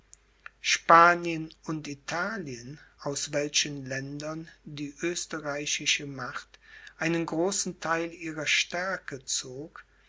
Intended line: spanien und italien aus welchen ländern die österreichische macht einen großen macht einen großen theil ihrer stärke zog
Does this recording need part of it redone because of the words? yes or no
yes